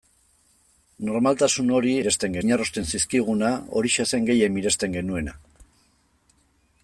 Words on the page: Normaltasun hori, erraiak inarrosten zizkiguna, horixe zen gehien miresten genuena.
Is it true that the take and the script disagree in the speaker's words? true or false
true